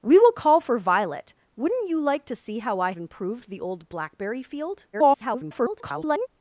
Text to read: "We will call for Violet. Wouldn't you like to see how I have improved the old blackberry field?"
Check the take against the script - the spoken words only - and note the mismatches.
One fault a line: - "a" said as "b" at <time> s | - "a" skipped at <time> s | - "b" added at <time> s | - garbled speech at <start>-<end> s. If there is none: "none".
- "have" skipped at 2.9 s
- garbled speech at 4.9-6.3 s